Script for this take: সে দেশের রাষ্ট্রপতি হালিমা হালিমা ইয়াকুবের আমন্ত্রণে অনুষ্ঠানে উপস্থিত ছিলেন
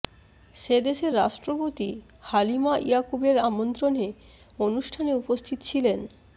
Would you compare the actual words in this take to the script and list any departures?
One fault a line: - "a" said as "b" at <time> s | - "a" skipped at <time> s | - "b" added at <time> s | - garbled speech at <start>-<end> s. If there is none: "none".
- "হালিমা" skipped at 2.7 s